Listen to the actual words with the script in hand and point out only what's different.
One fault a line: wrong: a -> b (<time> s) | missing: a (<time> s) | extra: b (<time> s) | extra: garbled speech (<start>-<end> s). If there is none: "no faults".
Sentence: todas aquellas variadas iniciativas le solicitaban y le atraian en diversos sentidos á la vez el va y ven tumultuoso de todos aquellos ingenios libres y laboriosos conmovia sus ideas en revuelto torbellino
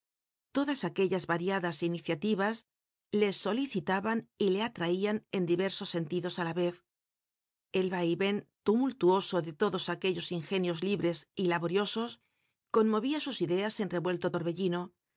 no faults